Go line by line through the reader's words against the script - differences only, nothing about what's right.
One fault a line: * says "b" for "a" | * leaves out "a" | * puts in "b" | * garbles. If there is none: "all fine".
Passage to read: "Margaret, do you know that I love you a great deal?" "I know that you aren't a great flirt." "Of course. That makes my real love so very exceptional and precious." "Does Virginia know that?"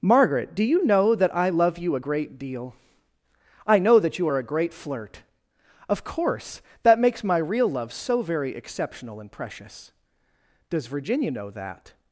* says "are" for "aren't"